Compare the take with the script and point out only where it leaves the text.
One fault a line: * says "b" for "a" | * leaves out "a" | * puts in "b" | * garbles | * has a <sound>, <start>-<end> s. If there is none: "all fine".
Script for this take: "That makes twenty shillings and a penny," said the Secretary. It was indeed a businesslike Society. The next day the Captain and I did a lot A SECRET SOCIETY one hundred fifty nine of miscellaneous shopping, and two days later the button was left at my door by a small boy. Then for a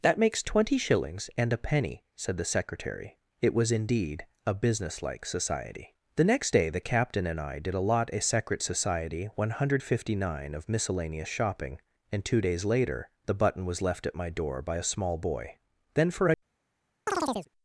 * has a chirp, 17.1-17.5 s